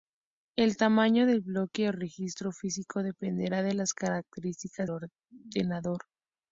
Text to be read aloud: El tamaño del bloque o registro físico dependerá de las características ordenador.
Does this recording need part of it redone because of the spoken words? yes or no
no